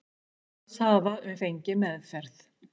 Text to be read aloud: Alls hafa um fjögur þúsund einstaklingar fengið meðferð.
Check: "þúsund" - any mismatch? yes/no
yes